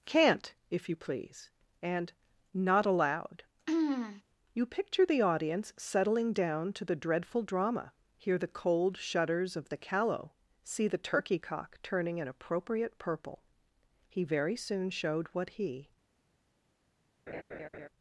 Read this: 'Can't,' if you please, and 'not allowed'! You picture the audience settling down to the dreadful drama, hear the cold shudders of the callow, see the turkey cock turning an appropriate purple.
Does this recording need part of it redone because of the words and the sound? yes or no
yes